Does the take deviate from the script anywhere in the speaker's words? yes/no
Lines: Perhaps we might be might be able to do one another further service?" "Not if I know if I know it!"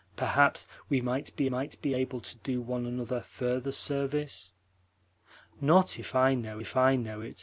no